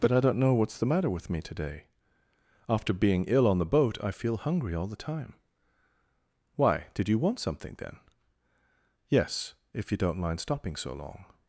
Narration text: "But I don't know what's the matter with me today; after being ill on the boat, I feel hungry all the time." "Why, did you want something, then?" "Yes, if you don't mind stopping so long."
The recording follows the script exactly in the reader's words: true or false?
true